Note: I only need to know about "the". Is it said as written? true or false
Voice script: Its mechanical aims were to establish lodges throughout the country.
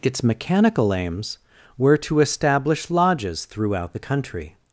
true